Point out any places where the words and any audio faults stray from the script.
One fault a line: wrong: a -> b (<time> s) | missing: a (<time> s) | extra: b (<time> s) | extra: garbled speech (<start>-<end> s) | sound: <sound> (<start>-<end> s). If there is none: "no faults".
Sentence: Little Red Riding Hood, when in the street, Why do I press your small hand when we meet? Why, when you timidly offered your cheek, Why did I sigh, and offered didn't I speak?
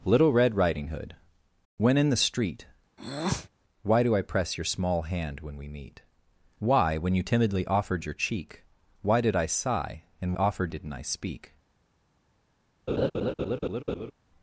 sound: breath (3.0-3.5 s)
sound: laugh (12.9-14.1 s)